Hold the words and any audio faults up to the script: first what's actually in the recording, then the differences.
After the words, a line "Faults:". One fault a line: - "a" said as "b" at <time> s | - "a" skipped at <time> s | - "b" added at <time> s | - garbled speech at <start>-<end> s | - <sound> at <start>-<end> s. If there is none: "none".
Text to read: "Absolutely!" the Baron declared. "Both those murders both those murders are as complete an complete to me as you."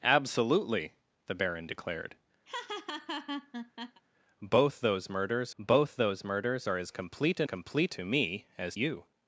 "Absolutely!" the Baron declared. "Both those murders both those murders are as complete an complete to me as you."
Faults:
- laugh at 2.5-4.0 s